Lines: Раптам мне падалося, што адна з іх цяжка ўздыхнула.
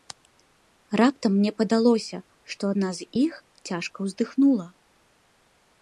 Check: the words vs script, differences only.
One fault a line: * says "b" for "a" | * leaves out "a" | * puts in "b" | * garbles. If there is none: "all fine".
all fine